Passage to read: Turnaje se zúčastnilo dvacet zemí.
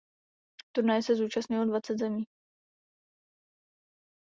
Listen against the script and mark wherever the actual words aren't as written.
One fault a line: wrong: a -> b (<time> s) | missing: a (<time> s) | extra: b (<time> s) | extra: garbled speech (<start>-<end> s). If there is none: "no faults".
no faults